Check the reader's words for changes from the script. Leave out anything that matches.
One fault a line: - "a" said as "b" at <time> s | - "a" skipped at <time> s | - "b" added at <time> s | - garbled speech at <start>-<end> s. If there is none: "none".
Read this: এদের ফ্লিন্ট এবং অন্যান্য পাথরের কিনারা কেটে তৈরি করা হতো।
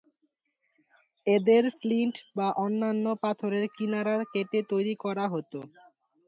- "এবং" said as "বা" at 2.4 s